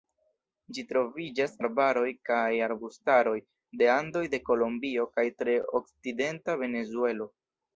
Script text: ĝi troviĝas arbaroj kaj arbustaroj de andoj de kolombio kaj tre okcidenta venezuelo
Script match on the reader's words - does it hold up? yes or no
yes